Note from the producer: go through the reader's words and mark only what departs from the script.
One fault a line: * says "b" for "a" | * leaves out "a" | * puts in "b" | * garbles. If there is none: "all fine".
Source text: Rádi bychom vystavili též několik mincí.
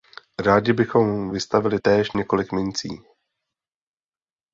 all fine